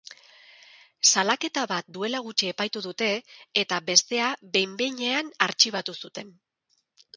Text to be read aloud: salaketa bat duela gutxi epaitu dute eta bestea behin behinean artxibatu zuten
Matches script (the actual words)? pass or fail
pass